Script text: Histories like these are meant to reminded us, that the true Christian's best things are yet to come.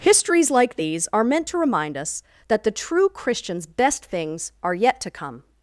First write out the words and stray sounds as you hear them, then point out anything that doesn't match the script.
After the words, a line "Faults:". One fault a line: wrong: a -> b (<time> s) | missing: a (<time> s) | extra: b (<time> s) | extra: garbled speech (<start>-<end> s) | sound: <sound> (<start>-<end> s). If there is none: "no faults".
Histories like these are meant to remind us, that the true Christian's best things are yet to come.
Faults:
wrong: reminded -> remind (1.6 s)